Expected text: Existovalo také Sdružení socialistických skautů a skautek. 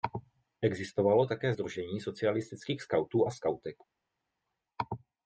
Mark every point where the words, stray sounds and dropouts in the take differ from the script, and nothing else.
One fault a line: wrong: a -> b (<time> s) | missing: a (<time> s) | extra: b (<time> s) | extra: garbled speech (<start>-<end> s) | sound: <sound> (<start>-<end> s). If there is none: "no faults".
no faults